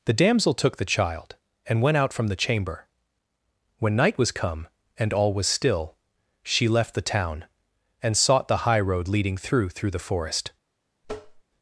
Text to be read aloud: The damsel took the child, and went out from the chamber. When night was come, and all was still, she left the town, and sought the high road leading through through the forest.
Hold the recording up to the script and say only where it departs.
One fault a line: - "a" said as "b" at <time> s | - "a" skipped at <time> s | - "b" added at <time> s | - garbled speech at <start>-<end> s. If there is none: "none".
none